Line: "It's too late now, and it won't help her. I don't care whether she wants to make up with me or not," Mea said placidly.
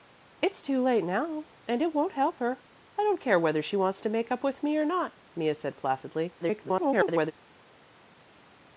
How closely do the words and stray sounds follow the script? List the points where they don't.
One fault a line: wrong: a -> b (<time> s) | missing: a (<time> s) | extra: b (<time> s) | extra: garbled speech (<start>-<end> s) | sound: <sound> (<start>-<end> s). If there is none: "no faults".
extra: garbled speech (6.4-7.3 s)